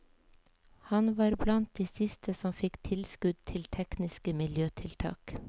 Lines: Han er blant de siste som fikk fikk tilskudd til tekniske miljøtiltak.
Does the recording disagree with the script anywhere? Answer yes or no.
yes